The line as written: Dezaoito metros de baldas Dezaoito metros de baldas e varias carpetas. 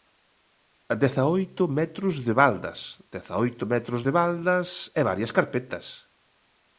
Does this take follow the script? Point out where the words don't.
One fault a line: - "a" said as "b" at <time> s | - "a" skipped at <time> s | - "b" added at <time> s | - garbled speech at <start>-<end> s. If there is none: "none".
none